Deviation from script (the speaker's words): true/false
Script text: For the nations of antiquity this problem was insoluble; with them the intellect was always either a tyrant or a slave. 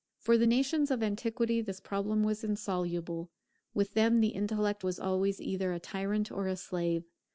false